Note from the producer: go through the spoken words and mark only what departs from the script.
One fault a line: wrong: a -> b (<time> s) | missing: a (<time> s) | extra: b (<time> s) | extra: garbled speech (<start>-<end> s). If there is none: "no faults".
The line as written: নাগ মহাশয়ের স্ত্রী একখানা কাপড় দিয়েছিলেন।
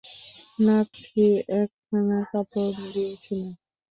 missing: মহাশয়ের (0.9 s)